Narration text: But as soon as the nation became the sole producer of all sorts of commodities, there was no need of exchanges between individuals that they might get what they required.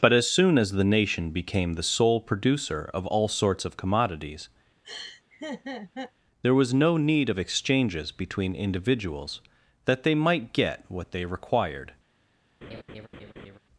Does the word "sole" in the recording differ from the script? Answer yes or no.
no